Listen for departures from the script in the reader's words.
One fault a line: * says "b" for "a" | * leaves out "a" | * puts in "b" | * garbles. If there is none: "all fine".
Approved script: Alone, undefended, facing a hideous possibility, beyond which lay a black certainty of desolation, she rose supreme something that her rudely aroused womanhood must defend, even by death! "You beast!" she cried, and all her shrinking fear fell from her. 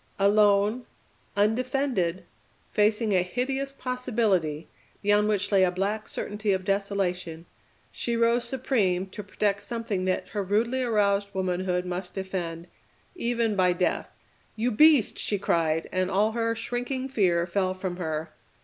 * puts in "to protect"